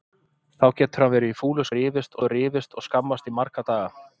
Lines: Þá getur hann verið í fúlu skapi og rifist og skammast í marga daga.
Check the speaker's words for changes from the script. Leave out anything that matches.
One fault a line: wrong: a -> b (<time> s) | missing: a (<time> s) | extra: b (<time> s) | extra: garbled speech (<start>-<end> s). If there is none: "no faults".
wrong: skapi -> rifist (1.8 s)